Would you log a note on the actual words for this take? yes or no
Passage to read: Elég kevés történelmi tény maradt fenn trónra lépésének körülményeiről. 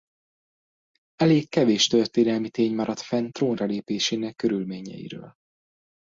no